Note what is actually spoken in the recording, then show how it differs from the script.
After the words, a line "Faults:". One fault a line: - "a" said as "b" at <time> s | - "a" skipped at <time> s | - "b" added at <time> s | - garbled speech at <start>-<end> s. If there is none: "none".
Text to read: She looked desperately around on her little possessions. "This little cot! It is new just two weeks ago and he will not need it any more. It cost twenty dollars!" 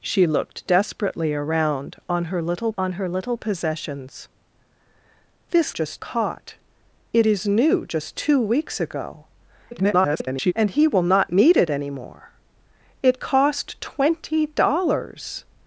She looked desperately around on her little on her little possessions. "This just cot! It is new just two weeks ago [garbled] and he will not need it any more. It cost twenty dollars!"
Faults:
- "on her little" added at 2.8 s
- "little" said as "just" at 5.7 s
- garbled speech at 9.7-10.5 s